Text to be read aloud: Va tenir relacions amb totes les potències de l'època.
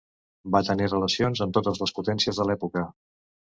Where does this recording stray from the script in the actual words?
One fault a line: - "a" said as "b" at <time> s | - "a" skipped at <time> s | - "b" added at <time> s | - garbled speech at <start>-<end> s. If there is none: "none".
none